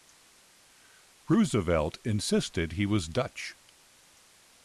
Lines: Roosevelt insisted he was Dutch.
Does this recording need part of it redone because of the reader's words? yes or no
no